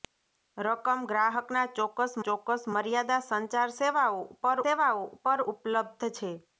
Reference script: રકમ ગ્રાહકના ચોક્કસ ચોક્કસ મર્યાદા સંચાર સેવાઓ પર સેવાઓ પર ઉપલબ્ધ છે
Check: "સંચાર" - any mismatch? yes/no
no